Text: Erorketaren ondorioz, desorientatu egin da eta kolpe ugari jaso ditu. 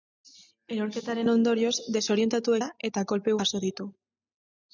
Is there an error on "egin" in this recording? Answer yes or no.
yes